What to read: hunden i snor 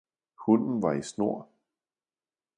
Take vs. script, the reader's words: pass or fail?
fail